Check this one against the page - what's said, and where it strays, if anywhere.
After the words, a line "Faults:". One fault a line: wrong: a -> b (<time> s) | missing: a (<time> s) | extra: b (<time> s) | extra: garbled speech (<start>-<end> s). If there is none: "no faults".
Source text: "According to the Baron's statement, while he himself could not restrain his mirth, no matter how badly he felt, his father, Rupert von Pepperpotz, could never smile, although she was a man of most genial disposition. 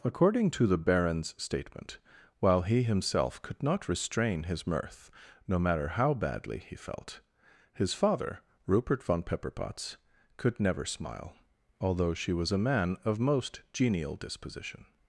"According to the Baron's statement, while he himself could not restrain his mirth, no matter how badly he felt, his father, Rupert von Pepperpotz, could never smile, although she was a man of most genial disposition.
Faults:
no faults